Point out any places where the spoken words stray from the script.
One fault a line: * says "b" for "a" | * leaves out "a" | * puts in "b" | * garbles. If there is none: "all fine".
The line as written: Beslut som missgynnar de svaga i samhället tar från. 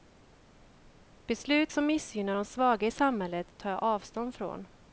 * puts in "jag avstånd"